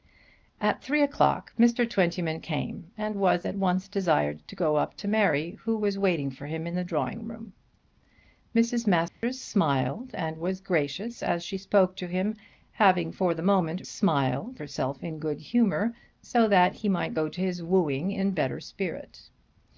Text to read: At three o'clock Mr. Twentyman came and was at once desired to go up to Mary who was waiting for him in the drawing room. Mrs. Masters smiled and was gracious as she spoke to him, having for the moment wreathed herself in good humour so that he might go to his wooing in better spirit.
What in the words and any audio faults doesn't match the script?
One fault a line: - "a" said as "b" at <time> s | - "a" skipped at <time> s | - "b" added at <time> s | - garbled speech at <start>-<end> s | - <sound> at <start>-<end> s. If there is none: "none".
- dropout at 9.1-9.2 s
- "wreathed" said as "smiled" at 13.9 s